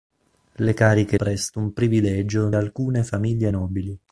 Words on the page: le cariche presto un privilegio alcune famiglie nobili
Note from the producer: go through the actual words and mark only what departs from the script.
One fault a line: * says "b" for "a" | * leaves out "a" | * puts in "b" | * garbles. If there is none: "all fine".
all fine